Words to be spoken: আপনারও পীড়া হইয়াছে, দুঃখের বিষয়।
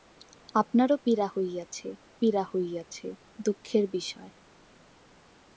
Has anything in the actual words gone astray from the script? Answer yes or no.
yes